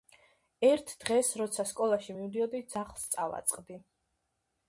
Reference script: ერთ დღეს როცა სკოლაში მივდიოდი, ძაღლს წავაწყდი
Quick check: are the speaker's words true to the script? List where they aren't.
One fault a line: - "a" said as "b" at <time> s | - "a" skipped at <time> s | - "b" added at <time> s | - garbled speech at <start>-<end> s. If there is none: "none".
none